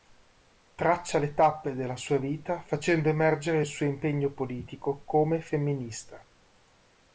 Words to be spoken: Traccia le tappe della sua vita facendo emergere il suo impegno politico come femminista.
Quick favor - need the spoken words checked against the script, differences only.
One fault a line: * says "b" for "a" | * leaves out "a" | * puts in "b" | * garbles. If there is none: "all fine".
all fine